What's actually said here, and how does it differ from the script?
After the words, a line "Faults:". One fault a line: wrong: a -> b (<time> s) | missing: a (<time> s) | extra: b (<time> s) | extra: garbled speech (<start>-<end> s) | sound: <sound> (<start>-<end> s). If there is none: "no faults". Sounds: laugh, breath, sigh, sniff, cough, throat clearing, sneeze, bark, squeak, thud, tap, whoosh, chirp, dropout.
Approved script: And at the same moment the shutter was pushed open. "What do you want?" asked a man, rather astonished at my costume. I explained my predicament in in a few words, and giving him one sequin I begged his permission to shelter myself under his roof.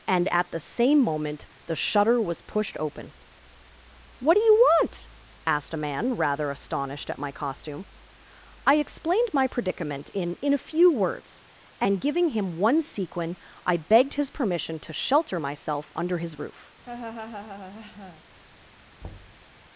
And at the same moment the shutter was pushed open. "What do you want?" asked a man, rather astonished at my costume. I explained my predicament in in a few words, and giving him one sequin I begged his permission to shelter myself under his roof.
Faults:
sound: laugh (16.8-18.2 s)
sound: thud (19.0-19.5 s)